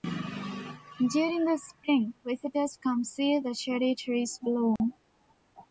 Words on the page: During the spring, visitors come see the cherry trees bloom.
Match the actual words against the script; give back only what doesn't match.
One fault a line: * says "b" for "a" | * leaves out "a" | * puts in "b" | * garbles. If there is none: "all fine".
all fine